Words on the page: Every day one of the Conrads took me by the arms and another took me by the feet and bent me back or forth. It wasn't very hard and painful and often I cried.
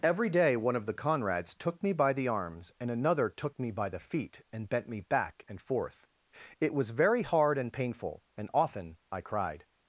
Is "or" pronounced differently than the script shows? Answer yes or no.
yes